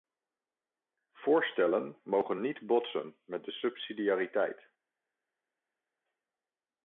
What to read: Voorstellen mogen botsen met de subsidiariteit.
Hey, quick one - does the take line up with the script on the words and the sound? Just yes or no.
no